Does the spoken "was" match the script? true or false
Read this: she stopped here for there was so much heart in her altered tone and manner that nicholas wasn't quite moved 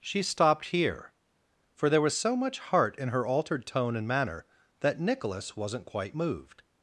true